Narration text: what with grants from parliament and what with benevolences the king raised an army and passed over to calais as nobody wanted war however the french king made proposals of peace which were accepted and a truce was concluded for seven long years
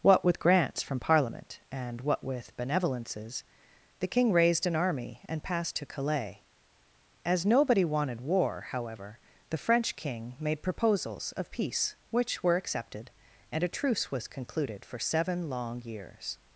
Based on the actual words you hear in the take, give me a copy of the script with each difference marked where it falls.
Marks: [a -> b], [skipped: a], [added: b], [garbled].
what with grants from parliament and what with benevolences the king raised an army and passed [skipped: over] to calais as nobody wanted war however the french king made proposals of peace which were accepted and a truce was concluded for seven long years